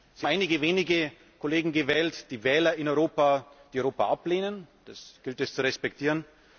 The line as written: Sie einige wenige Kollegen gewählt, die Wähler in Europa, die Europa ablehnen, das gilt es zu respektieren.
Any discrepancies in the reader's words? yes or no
no